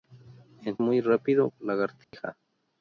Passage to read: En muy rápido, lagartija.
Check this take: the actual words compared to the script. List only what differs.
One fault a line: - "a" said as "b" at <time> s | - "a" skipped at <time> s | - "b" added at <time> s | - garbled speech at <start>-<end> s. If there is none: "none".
none